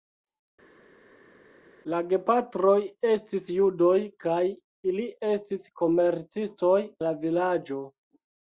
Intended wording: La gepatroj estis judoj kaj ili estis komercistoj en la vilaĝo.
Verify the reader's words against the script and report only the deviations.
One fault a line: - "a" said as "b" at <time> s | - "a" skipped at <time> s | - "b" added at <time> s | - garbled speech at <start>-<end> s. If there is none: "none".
- "en" skipped at 6.8 s